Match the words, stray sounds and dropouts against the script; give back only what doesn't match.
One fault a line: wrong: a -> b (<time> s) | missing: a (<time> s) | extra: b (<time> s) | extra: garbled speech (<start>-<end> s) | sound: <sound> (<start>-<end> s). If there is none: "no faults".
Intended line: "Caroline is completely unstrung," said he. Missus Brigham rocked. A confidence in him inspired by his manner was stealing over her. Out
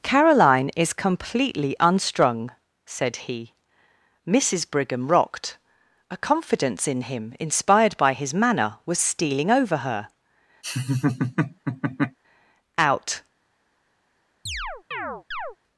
sound: laugh (10.6-12.2 s)
sound: chirp (14.5-15.6 s)